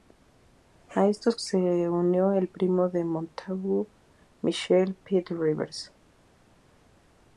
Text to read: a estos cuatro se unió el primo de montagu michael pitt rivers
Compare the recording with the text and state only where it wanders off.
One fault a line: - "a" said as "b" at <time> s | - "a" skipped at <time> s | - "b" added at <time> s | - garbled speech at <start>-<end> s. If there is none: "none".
- "cuatro" skipped at 1.4 s